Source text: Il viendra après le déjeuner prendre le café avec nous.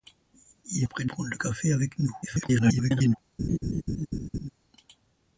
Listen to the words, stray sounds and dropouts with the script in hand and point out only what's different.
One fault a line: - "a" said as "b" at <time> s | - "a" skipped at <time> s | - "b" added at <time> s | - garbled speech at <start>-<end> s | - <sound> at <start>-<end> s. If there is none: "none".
- "viendra" skipped at 0.9 s
- "déjeuner" skipped at 1.1 s
- garbled speech at 2.2-3.2 s
- laugh at 3.4-4.5 s